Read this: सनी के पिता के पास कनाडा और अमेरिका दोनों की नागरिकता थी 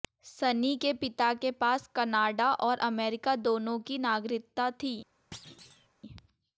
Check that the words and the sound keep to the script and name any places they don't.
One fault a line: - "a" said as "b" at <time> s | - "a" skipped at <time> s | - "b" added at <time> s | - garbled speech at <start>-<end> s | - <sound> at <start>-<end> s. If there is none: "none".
- thud at 5.3-5.9 s